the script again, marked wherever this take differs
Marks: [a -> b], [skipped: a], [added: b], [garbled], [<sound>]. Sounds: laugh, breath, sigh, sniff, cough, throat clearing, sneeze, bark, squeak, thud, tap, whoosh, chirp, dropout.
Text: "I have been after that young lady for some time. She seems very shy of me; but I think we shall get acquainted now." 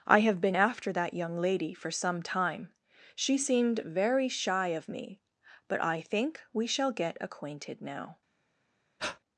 "I have been after that young lady for some time. She [seems -> seemed] very shy of me; but I think we shall get acquainted now." [breath]